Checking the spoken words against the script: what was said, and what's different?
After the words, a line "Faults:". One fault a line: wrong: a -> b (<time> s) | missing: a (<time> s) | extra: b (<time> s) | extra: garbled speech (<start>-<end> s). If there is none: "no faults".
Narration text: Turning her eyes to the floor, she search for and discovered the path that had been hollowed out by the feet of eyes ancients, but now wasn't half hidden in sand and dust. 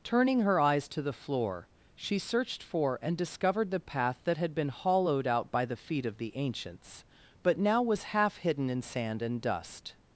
Turning her eyes to the floor, she searched for and discovered the path that had been hollowed out by the feet of the ancients, but now was half hidden in sand and dust.
Faults:
wrong: search -> searched (2.2 s)
wrong: eyes -> the (6.2 s)
wrong: wasn't -> was (7.8 s)